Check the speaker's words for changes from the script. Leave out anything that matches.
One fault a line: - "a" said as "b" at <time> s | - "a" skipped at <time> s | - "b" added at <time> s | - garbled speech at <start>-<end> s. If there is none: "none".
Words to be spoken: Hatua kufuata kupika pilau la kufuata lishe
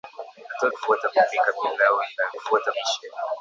none